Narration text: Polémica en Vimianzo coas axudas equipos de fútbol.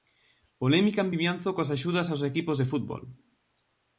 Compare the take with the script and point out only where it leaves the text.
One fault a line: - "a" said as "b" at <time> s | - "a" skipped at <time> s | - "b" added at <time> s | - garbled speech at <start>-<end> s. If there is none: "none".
- "aos" added at 2.1 s